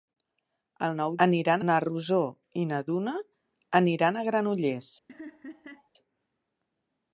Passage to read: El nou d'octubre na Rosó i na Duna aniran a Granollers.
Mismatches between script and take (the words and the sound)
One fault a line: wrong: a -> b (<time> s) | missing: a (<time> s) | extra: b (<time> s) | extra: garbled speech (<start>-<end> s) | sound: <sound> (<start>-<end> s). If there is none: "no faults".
wrong: d'octubre -> aniran (1.3 s)
sound: laugh (5.1-5.9 s)